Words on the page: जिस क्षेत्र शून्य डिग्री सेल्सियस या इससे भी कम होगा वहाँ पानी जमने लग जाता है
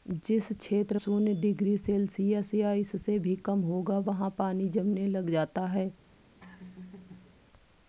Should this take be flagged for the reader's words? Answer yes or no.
no